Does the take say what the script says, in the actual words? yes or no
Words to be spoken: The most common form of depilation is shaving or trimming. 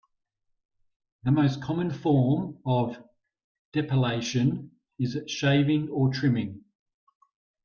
yes